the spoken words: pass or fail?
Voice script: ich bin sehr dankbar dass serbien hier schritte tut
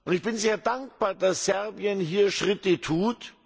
pass